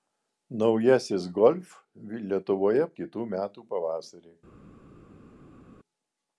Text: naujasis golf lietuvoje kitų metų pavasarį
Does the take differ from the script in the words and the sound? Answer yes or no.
no